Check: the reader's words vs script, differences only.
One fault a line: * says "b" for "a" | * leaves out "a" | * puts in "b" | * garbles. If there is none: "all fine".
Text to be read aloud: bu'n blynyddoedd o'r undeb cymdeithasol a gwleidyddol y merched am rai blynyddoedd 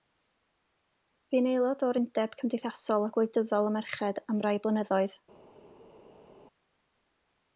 * says "aelod" for "blynyddoedd"